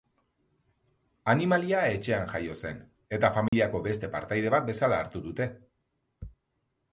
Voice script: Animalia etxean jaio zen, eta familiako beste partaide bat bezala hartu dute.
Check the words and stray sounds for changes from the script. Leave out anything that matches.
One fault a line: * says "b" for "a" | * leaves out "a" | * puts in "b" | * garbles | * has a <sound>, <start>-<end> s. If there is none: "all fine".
* has a dropout, 3.5-3.5 s